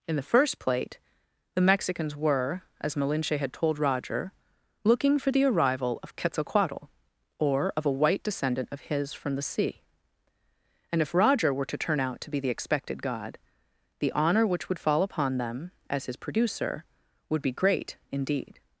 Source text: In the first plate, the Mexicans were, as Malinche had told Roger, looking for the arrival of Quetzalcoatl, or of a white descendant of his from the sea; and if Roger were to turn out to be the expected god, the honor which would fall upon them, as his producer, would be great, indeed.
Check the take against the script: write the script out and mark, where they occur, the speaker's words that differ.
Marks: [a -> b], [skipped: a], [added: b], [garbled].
In the first plate, the Mexicans were, as Malinche had told Roger, looking for the arrival of Quetzalcoatl, or of a white descendant of his from the sea; and if Roger were to turn out to be the expected god, the honor which would fall upon them, as his producer, would be great, indeed.